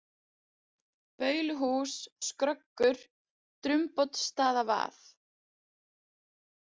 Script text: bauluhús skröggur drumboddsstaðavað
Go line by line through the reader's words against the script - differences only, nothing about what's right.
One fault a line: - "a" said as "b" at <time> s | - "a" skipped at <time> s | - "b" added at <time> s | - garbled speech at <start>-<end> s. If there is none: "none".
none